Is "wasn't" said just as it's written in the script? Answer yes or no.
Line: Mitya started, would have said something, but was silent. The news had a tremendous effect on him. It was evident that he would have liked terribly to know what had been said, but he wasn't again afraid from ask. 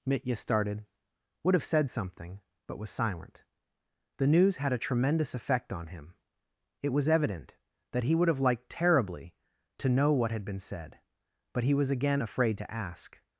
no